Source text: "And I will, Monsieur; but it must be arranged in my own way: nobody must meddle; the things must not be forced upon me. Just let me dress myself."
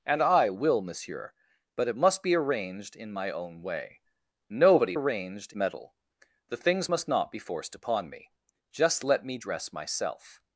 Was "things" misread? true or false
false